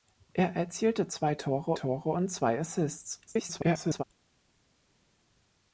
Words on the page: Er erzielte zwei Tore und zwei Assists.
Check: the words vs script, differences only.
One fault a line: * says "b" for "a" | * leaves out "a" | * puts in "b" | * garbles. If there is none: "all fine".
* puts in "Tore"
* garbles